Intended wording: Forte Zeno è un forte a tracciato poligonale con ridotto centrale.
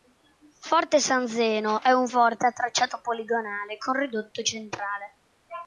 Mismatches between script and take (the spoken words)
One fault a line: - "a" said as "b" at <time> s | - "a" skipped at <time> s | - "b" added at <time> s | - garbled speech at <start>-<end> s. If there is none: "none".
- "San" added at 1.0 s